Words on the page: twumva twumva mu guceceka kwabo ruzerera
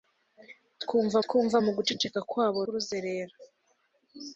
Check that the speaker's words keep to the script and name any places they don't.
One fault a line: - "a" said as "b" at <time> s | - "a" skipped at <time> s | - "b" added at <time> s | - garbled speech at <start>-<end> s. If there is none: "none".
none